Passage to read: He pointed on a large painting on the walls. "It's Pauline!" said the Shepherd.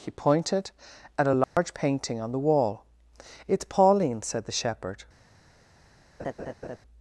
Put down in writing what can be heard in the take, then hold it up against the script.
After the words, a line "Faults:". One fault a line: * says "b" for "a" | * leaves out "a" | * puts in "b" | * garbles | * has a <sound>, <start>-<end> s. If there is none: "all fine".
He pointed at a large painting on the wall. "It's Pauline!" said the Shepherd.
Faults:
* says "at" for "on"
* has a dropout, 1.4-1.6 s
* says "wall" for "walls"
* has a laugh, 6.2-6.8 s